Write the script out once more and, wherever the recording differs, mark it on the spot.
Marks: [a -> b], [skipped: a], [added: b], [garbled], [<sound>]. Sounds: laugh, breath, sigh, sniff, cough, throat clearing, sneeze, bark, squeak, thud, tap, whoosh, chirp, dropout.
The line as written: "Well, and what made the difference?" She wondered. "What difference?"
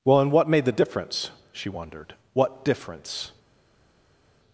"Well, and what made the difference?" She wondered. "What difference?"